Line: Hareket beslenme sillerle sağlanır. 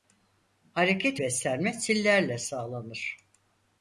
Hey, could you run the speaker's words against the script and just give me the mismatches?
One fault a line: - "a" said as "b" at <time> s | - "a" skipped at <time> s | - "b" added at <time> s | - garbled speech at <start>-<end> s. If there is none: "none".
none